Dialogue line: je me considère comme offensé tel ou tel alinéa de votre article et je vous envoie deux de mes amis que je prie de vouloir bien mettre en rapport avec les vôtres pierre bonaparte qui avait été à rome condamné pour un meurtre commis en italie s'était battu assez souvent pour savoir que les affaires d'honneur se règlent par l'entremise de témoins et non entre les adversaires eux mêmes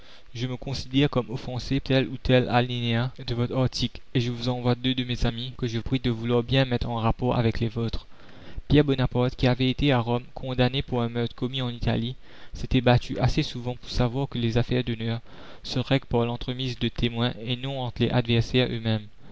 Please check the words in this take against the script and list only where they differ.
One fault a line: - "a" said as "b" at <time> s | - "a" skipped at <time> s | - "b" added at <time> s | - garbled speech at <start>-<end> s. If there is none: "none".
none